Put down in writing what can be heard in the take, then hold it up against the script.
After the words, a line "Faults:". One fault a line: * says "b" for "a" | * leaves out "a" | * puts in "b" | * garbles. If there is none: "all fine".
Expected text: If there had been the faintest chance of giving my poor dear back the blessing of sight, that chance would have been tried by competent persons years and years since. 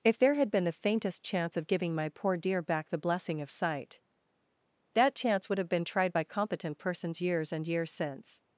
If there had been the faintest chance of giving my poor dear back the blessing of sight, that chance would have been tried by competent persons years and years since.
Faults:
all fine